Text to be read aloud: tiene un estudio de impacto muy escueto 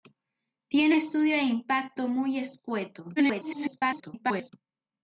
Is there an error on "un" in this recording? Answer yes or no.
yes